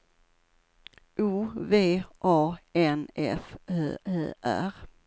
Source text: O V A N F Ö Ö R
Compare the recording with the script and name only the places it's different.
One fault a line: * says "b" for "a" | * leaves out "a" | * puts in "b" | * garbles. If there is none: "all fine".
all fine